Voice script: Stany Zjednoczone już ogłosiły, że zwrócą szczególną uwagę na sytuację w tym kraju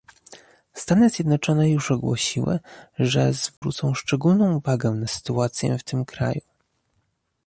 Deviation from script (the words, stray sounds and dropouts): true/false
true